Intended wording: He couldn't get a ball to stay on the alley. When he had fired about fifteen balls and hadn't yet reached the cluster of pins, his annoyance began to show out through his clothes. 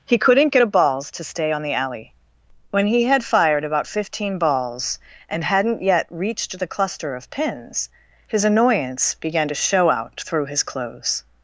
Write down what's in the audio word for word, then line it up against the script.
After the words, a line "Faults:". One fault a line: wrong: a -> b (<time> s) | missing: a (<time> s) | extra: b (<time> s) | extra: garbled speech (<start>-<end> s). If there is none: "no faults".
He couldn't get a balls to stay on the alley. When he had fired about fifteen balls and hadn't yet reached the cluster of pins, his annoyance began to show out through his clothes.
Faults:
wrong: ball -> balls (0.6 s)